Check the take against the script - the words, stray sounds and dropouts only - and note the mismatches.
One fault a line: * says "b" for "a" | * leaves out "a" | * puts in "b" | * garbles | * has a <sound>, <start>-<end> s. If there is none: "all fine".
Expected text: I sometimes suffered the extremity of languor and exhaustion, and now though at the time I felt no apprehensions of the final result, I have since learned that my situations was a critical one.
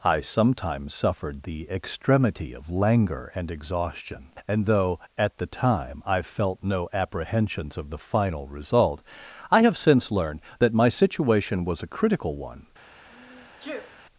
* leaves out "now"
* says "situation" for "situations"
* has a sneeze, 13.1-14.0 s